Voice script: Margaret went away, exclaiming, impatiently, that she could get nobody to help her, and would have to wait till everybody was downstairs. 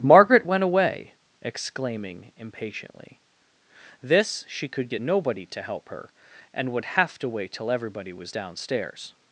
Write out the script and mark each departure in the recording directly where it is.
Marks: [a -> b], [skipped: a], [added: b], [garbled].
Margaret went away, exclaiming, impatiently, [that -> this] she could get nobody to help her, and would have to wait till everybody was downstairs.